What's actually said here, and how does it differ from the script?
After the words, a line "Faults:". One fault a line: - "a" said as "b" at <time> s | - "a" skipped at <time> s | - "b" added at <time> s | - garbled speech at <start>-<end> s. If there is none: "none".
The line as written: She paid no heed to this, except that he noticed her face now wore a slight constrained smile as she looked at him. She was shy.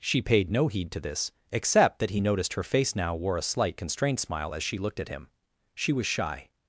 She paid no heed to this, except that he noticed her face now wore a slight constrained smile as she looked at him. She was shy.
Faults:
none